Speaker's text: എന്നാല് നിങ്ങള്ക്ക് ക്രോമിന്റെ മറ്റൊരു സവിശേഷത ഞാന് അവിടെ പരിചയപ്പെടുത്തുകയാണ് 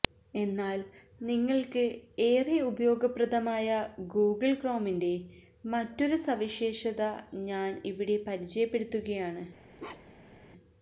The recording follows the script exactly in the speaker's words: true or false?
false